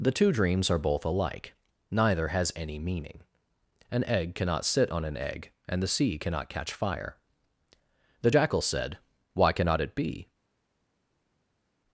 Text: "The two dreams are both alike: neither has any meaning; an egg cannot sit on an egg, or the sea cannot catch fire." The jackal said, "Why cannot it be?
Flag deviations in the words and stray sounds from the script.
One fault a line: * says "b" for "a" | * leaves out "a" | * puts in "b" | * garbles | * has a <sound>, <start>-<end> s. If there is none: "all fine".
* says "and" for "or"